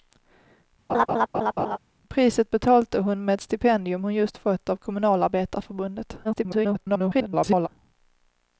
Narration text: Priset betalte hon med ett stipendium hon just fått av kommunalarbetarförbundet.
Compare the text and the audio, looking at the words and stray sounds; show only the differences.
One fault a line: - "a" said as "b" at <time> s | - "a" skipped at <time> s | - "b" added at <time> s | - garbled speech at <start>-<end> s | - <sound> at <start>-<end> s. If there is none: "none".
- laugh at 0.9-1.8 s
- garbled speech at 6.2-7.7 s